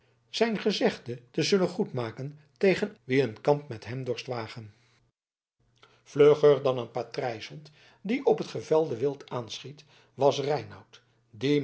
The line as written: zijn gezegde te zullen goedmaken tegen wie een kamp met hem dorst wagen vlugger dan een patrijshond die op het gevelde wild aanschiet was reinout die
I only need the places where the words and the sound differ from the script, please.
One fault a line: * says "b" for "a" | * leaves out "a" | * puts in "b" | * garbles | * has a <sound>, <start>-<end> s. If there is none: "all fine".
all fine